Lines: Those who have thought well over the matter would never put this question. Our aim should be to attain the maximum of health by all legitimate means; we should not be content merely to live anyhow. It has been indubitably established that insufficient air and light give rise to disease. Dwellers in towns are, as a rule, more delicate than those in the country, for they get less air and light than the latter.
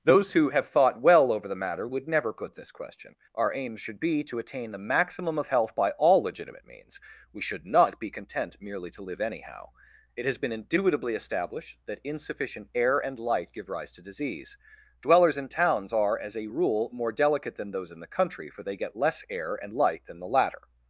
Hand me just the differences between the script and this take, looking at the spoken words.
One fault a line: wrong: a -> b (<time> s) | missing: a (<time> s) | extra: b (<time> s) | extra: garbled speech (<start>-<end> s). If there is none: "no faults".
no faults